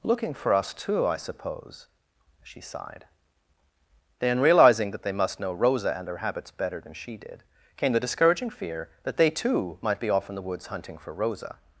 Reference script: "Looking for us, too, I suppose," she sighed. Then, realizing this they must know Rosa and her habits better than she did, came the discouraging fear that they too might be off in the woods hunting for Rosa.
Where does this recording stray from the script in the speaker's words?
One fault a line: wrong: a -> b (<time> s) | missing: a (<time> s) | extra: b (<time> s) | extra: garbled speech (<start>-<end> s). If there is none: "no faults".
wrong: this -> that (4.9 s)